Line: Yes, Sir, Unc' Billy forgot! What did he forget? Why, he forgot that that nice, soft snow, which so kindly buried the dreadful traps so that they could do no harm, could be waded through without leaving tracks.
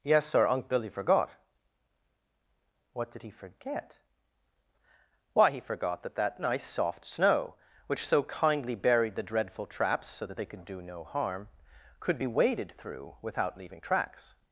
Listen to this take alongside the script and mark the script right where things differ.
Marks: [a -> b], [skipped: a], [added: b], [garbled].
Yes, Sir, Unc' Billy forgot! What did he forget? Why, he forgot that that nice, soft snow, which so kindly buried the dreadful traps so that they could do no harm, could be waded through without leaving tracks.